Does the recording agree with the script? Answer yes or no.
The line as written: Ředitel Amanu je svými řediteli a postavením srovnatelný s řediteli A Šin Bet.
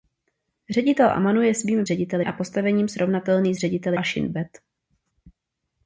yes